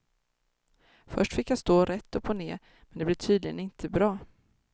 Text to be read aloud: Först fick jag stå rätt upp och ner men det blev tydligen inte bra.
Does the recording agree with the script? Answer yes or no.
yes